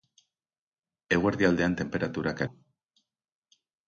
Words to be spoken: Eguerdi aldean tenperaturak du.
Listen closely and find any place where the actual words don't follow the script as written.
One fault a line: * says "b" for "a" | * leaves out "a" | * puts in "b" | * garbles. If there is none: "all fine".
all fine